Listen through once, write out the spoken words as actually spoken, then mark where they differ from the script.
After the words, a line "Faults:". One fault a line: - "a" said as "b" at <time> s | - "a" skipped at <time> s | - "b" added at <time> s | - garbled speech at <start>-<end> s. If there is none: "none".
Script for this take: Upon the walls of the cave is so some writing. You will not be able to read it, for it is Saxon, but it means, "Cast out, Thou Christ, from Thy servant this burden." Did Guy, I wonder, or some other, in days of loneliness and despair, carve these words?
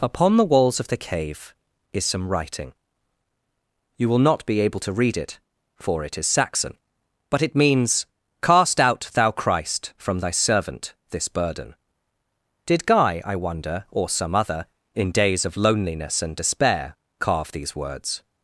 Upon the walls of the cave is some writing. You will not be able to read it, for it is Saxon, but it means, "Cast out, Thou Christ, from Thy servant this burden." Did Guy, I wonder, or some other, in days of loneliness and despair, carve these words?
Faults:
- "so" skipped at 2.0 s